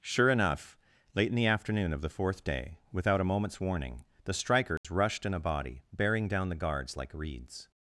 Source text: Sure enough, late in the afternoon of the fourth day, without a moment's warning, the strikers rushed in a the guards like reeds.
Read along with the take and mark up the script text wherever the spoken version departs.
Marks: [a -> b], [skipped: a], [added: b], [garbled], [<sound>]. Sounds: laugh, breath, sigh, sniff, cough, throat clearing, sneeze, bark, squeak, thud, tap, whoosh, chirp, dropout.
Sure enough, late in the afternoon of the fourth day, without a moment's warning, the strikers [dropout] rushed in a [added: body bearing down] the guards like reeds.